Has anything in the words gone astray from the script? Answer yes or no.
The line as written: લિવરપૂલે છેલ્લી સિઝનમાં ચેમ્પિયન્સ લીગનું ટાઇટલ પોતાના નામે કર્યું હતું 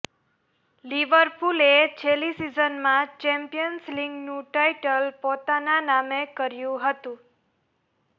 no